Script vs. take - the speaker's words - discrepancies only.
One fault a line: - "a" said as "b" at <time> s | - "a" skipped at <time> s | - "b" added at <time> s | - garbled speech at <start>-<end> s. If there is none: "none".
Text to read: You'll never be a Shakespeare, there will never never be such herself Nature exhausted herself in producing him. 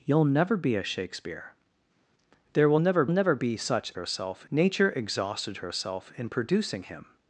none